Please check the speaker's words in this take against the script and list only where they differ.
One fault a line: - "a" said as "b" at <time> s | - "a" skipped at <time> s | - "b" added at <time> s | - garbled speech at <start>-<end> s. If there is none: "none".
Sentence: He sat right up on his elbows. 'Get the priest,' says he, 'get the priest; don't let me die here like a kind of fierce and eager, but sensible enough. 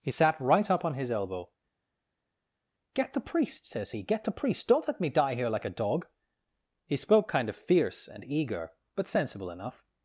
- "elbows" said as "elbow" at 1.1 s
- "dog He spoke" added at 5.7 s